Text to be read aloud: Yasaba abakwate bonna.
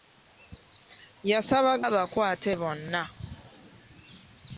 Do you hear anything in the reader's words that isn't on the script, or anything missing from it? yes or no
no